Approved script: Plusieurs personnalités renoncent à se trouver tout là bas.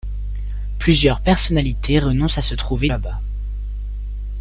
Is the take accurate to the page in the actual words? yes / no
no